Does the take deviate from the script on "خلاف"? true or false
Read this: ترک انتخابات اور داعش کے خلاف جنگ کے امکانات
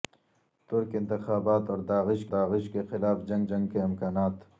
false